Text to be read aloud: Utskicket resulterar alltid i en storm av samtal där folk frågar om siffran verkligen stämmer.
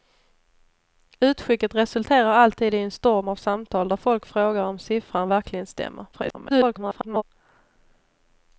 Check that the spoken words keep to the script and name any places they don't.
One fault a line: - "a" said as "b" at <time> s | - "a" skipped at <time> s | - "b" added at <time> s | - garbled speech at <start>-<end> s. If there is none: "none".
- garbled speech at 6.1-7.2 s